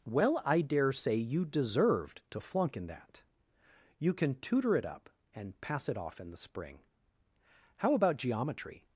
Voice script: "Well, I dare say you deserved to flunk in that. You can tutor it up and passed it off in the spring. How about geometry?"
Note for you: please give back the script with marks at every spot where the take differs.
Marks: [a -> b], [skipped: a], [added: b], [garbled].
"Well, I dare say you deserved to flunk in that. You can tutor it up and [passed -> pass] it off in the spring. How about geometry?"